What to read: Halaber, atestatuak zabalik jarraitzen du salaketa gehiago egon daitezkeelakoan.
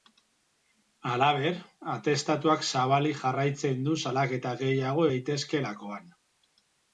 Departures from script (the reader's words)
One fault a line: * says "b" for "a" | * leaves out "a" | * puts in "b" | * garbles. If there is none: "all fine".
* leaves out "egon"